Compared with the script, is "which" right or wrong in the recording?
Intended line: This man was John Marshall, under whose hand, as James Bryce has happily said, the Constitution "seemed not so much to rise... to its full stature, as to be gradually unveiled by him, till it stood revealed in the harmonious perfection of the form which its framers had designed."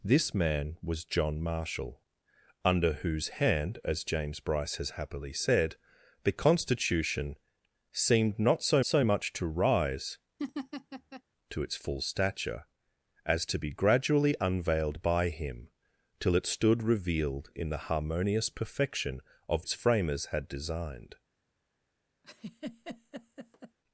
wrong